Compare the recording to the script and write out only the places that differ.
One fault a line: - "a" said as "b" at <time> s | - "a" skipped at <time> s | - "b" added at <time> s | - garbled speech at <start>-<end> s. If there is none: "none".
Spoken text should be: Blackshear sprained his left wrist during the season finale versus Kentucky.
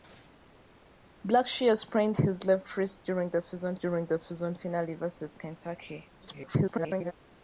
- "during the season" added at 3.8 s
- garbled speech at 6.2-7.1 s